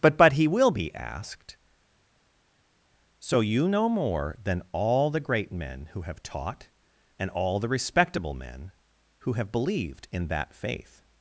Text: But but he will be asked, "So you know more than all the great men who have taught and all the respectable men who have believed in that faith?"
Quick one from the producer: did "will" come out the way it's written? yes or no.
yes